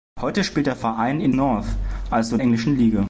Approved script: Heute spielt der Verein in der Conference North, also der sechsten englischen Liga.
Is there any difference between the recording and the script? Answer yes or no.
yes